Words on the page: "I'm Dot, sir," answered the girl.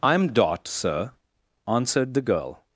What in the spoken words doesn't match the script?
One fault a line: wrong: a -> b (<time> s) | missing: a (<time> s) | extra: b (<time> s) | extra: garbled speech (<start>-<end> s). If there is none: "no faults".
no faults